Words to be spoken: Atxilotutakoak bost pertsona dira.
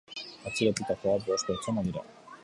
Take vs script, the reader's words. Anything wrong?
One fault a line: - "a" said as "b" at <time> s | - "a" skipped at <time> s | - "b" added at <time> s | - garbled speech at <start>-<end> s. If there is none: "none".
none